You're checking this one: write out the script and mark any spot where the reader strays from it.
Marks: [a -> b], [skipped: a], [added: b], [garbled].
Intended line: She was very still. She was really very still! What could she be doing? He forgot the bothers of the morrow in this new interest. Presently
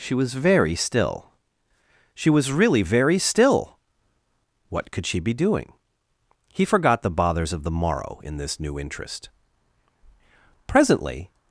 She was very still. She was really very still! What could she be doing? He forgot the bothers of the morrow in this new interest. Presently